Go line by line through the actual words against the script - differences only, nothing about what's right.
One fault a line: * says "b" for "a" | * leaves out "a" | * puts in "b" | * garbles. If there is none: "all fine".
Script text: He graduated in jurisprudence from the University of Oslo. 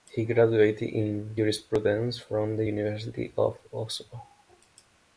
all fine